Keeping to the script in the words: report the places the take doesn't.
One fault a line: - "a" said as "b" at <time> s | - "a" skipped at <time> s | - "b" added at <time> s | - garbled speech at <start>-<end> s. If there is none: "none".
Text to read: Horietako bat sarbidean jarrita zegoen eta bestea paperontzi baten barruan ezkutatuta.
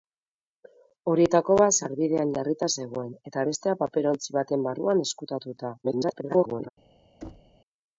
- garbled speech at 5.8-6.7 s